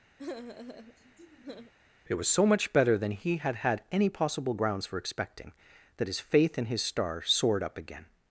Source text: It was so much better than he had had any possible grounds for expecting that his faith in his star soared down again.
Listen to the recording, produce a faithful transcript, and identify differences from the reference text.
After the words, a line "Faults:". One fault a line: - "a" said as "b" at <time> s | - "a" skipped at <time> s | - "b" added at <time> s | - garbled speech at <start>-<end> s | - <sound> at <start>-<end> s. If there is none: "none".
It was so much better than he had had any possible grounds for expecting that his faith in his star soared up again.
Faults:
- sigh at 0.2-1.7 s
- "down" said as "up" at 7.6 s